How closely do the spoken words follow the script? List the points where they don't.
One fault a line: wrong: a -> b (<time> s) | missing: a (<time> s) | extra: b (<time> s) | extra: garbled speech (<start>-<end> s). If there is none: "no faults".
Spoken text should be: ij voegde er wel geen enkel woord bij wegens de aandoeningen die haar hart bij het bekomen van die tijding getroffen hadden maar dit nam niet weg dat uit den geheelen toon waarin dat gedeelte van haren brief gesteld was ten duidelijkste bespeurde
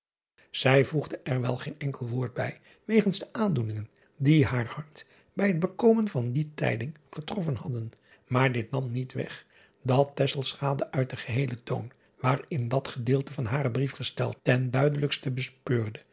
missing: was (14.4 s)